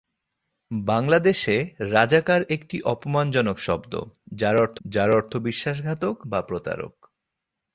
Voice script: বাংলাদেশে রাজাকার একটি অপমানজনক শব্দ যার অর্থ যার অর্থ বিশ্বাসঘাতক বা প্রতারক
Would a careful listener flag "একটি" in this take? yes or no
no